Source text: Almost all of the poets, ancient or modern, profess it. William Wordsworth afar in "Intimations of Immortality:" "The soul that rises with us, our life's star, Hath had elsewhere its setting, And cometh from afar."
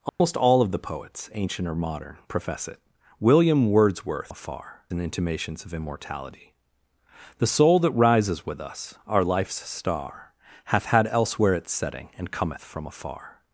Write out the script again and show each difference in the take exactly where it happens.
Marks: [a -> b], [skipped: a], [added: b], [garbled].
Almost all of the poets, ancient or modern, profess it. William Wordsworth afar in "Intimations of Immortality:" "The soul that rises with us, our life's star, Hath had elsewhere its setting, And cometh from afar."